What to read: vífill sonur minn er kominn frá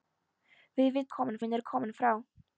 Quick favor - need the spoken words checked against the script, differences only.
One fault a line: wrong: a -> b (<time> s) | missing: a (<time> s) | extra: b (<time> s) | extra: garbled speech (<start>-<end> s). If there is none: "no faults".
wrong: sonur -> kominn (1.2 s)